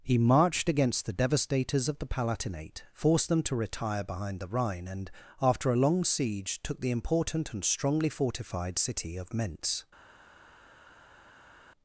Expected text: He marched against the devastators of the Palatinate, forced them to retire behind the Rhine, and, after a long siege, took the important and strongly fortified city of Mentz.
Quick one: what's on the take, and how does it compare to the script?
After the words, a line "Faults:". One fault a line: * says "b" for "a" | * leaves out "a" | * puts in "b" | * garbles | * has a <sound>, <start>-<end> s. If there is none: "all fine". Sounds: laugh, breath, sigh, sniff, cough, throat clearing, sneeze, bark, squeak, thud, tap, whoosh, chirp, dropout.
He marched against the devastators of the Palatinate, forced them to retire behind the Rhine, and, after a long siege, took the important and strongly fortified city of Mentz.
Faults:
all fine